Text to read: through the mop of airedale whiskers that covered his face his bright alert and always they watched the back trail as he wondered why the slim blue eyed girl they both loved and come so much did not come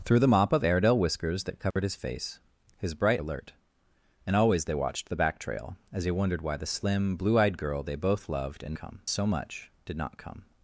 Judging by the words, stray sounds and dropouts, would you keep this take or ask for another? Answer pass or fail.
fail